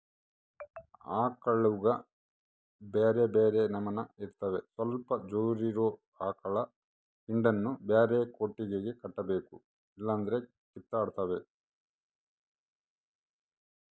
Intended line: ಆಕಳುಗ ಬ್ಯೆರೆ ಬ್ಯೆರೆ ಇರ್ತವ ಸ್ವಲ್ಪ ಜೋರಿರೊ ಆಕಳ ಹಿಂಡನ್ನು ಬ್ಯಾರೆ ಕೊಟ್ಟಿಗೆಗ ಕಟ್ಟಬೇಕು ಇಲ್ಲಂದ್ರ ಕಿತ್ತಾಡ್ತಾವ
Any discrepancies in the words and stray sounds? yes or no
yes